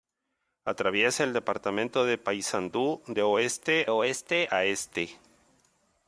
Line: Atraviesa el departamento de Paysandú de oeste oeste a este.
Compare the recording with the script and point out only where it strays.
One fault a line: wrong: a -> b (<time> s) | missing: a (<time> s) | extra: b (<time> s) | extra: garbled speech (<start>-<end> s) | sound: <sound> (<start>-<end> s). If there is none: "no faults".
no faults